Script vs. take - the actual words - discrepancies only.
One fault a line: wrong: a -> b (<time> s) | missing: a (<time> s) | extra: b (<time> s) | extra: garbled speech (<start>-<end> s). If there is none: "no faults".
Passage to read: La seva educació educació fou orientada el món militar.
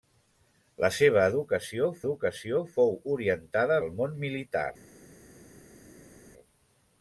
no faults